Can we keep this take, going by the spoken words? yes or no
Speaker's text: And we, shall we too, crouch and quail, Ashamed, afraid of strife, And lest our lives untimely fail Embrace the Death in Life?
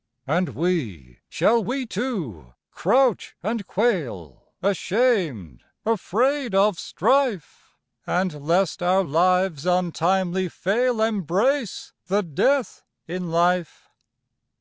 yes